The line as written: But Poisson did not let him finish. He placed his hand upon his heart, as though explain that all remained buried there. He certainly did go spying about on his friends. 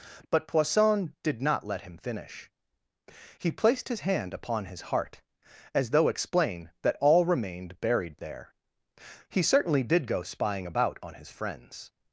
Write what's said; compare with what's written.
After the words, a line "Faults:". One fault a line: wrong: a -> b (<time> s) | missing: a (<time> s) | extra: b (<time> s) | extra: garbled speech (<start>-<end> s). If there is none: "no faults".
But Poisson did not let him finish. He placed his hand upon his heart, as though explain that all remained buried there. He certainly did go spying about on his friends.
Faults:
no faults